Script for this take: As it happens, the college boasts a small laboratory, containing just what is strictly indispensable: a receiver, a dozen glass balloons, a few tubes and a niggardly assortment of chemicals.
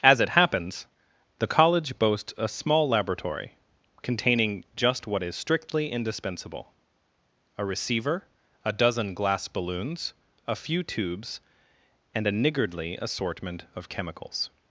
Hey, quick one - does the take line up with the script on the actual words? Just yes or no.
yes